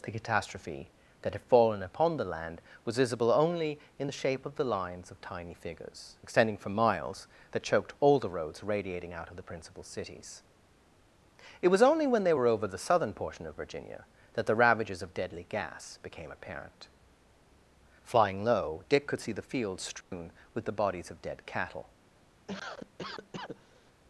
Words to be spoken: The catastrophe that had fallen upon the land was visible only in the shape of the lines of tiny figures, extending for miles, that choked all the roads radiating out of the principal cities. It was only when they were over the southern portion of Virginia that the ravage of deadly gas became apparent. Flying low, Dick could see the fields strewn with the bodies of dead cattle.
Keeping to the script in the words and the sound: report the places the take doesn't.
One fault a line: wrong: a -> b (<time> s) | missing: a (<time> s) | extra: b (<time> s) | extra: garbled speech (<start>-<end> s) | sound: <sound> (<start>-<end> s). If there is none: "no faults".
wrong: ravage -> ravages (14.6 s)
sound: dropout (20.0-20.1 s)
sound: cough (22.5-23.9 s)